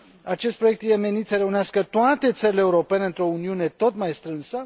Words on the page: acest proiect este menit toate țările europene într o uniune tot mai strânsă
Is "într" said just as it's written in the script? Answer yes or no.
yes